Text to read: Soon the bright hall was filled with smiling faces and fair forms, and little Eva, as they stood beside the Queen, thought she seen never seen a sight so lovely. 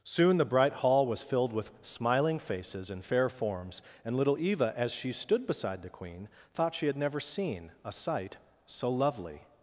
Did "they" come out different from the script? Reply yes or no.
yes